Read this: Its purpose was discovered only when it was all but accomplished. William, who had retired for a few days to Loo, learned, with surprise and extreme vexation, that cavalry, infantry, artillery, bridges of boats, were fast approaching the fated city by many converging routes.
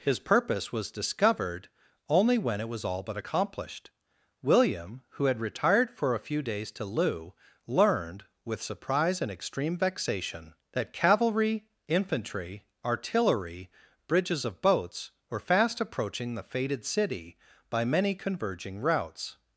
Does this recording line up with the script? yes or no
no